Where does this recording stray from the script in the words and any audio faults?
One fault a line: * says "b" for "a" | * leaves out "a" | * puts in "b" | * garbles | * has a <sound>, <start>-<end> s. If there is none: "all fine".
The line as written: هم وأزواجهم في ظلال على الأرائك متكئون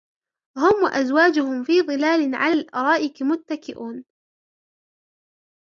all fine